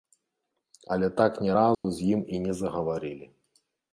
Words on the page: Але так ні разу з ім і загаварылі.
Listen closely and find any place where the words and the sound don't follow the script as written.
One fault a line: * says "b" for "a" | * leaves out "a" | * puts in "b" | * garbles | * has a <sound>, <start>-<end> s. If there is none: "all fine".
* has a dropout, 1.7-1.8 s
* puts in "не"